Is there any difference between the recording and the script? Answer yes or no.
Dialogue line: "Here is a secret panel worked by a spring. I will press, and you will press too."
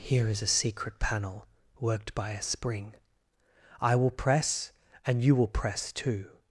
no